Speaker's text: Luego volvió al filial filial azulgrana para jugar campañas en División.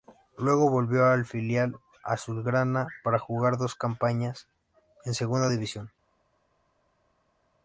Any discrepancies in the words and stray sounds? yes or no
yes